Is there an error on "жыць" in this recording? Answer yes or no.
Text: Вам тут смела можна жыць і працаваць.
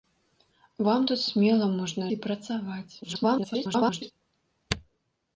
yes